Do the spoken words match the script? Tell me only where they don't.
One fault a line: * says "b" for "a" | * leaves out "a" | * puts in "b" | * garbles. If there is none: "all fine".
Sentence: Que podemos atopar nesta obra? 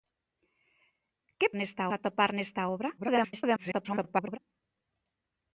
* says "nesta" for "podemos"
* garbles